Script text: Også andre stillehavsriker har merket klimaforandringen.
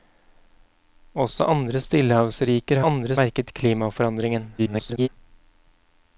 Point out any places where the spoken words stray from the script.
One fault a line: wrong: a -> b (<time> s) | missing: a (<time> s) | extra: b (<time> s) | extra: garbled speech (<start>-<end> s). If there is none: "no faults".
wrong: har -> andre (2.9 s)
extra: garbled speech (4.6-5.1 s)